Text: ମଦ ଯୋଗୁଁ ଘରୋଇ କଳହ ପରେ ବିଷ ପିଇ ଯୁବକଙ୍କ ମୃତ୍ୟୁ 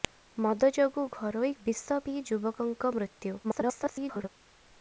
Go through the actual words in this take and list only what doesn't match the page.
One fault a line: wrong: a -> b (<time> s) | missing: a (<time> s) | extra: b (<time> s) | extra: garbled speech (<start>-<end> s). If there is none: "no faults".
missing: କଳହ ପରେ (1.5 s)
extra: garbled speech (3.4-4.3 s)